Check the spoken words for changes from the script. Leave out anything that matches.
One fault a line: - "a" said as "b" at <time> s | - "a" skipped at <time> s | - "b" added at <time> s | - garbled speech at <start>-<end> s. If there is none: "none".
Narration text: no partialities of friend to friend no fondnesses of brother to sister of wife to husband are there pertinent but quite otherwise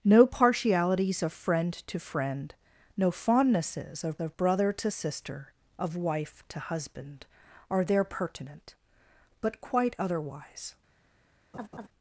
- "of" added at 4.2 s